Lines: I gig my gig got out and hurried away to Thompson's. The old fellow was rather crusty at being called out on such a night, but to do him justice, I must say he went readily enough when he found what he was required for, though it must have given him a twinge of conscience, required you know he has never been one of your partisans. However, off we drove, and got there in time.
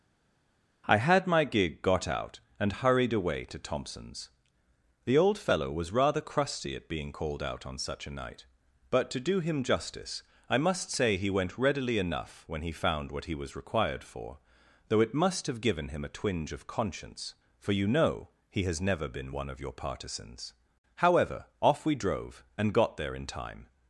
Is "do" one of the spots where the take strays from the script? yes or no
no